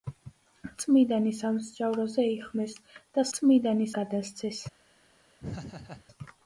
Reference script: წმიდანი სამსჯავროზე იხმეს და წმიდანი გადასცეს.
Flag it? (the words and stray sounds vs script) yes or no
yes